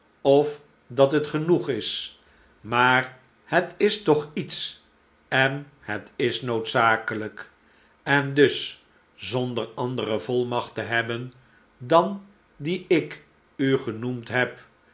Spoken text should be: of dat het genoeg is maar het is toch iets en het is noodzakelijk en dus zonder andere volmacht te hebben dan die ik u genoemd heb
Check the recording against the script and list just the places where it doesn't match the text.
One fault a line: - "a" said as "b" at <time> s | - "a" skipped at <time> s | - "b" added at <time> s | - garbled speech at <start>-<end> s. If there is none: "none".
none